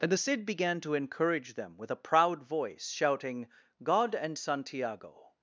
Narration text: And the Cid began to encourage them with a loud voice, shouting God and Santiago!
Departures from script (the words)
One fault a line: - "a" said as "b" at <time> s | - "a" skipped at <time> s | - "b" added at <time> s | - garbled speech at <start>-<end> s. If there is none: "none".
- "loud" said as "proud" at 2.0 s